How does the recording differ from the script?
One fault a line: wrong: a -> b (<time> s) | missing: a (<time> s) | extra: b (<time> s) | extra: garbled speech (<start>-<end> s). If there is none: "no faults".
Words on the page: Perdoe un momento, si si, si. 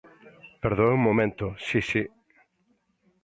missing: si (2.0 s)